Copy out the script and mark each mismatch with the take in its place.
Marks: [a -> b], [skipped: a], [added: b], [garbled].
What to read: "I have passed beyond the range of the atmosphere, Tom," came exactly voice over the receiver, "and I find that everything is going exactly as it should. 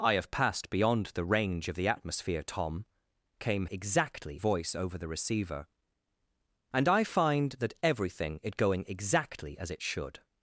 "I have passed beyond the range of the atmosphere, Tom," came exactly voice over the receiver, "and I find that everything is going exactly as it should.